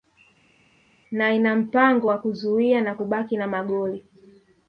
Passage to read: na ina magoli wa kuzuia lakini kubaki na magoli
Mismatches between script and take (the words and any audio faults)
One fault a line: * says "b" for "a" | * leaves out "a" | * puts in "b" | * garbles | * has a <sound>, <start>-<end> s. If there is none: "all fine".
* says "mpango" for "magoli"
* says "na" for "lakini"